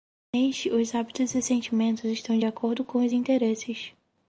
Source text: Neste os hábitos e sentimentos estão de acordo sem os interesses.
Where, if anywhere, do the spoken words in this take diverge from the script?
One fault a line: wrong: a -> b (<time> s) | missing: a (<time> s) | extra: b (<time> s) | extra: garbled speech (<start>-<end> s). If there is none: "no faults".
wrong: sem -> com (2.8 s)